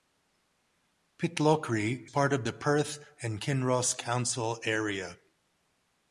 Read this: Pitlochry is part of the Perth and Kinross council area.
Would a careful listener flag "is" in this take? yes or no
yes